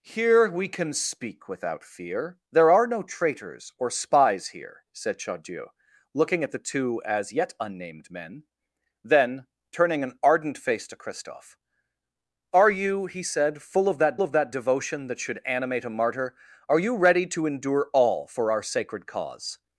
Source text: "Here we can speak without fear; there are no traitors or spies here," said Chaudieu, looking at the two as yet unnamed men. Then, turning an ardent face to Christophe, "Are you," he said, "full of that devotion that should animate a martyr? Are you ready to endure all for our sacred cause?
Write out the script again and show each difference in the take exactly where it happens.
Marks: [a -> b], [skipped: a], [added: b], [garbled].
"Here we can speak without fear; there are no traitors or spies here," said Chaudieu, looking at the two as yet unnamed men. Then, turning an ardent face to Christophe, "Are you," he said, "full of that [added: of that] devotion that should animate a martyr? Are you ready to endure all for our sacred cause?